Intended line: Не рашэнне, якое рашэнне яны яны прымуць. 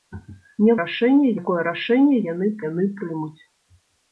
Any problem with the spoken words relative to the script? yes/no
no